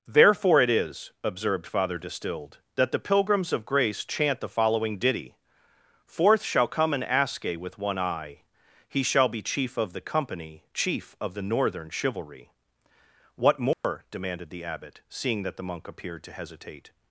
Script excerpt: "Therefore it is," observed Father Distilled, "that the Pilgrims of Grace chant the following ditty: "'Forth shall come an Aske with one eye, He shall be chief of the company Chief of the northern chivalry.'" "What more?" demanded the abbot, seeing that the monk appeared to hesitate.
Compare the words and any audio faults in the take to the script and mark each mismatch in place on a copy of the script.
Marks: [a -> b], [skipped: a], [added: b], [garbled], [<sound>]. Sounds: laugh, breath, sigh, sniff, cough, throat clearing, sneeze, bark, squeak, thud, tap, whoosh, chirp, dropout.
"Therefore it is," observed Father Distilled, "that the Pilgrims of Grace chant the following ditty: "'Forth shall come an Aske with one eye, He shall be chief of the company Chief of the northern chivalry.'" "What more?" [dropout] demanded the abbot, seeing that the monk appeared to hesitate.